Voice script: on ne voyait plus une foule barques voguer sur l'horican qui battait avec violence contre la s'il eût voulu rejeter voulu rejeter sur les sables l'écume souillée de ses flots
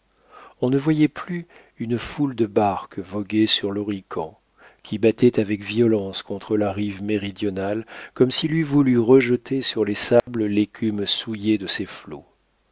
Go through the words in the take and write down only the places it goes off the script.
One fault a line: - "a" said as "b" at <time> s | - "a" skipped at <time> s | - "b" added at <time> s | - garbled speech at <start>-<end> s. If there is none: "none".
- "de" added at 2.3 s
- "rive méridionale comme" added at 6.7 s
- "voulu rejeter" skipped at 9.6 s